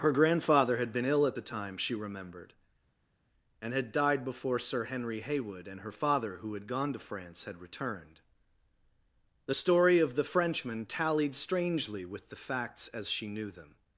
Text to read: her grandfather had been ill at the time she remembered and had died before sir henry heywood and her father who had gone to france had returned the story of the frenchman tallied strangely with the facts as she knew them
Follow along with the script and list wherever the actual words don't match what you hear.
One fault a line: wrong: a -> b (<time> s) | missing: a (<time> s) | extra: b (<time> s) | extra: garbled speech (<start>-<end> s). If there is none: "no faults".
no faults